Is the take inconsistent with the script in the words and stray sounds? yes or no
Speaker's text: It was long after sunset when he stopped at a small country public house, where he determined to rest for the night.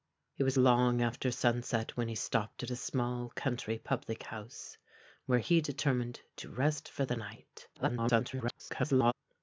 yes